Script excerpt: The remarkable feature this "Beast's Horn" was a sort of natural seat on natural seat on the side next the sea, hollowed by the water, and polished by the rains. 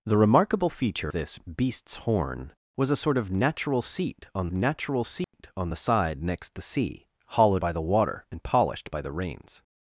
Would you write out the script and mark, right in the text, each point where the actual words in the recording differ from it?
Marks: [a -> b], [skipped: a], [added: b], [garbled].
The remarkable feature this "Beast's Horn" was a sort of natural seat on natural seat on the side next the sea, hollowed by the water, and polished by the rains.